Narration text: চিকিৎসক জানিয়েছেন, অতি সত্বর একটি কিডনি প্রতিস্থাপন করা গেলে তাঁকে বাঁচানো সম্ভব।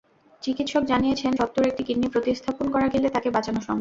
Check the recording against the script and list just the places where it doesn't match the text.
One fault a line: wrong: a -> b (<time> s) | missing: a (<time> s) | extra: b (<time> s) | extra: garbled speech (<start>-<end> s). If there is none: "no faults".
missing: অতি (1.3 s)